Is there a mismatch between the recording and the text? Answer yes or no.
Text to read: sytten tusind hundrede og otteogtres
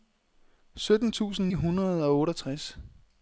no